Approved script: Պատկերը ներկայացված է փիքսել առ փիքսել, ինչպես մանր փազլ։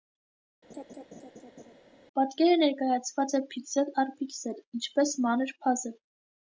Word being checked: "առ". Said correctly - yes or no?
yes